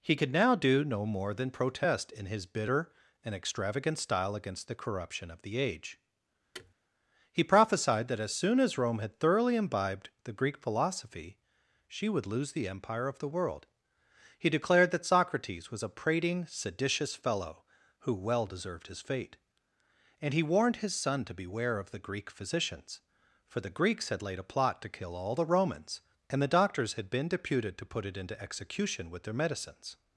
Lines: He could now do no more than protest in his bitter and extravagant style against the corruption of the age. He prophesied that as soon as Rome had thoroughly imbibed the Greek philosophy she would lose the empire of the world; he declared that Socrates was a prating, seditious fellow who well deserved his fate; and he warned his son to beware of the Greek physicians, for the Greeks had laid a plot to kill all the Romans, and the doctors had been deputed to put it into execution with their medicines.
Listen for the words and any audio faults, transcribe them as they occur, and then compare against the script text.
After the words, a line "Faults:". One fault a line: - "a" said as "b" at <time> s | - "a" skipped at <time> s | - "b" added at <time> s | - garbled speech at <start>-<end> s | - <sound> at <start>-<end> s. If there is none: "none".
He could now do no more than protest in his bitter and extravagant style against the corruption of the age. He prophesied that as soon as Rome had thoroughly imbibed the Greek philosophy she would lose the empire of the world; he declared that Socrates was a prating, seditious fellow who well deserved his fate; and he warned his son to beware of the Greek physicians, for the Greeks had laid a plot to kill all the Romans, and the doctors had been deputed to put it into execution with their medicines.
Faults:
- thud at 6.5-6.7 s